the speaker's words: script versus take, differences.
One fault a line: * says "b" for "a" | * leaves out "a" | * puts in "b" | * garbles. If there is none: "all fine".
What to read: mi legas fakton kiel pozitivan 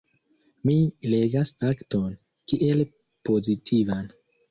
all fine